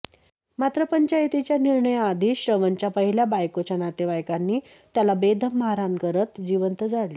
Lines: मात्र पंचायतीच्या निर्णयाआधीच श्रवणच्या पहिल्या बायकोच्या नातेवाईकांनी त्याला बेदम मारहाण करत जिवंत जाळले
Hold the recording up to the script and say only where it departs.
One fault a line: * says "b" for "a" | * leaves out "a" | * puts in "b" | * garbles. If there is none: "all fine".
all fine